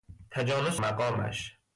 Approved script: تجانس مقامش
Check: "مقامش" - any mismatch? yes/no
no